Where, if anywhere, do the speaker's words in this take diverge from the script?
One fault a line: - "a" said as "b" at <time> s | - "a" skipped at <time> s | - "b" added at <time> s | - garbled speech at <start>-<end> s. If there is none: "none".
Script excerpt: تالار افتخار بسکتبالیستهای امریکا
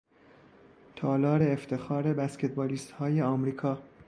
none